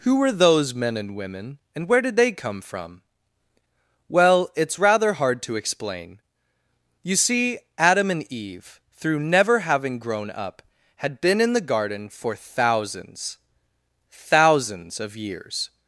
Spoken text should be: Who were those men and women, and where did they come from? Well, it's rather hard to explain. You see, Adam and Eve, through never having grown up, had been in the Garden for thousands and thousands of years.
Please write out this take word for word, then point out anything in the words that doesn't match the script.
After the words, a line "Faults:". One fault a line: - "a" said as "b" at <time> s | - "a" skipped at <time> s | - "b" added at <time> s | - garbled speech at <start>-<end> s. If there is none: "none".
Who were those men and women, and where did they come from? Well, it's rather hard to explain. You see, Adam and Eve, through never having grown up, had been in the Garden for thousands thousands of years.
Faults:
- "and" skipped at 13.4 s